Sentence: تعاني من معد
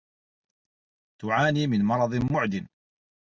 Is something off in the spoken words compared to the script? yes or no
yes